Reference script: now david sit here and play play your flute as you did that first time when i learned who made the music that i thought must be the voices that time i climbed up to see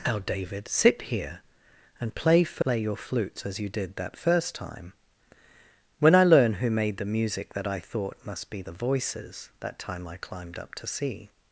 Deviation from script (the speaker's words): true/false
true